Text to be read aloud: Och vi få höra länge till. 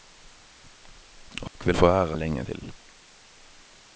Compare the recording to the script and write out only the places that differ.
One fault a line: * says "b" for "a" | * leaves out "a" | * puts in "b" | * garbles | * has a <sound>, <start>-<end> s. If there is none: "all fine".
* has a dropout, 1.5-1.5 s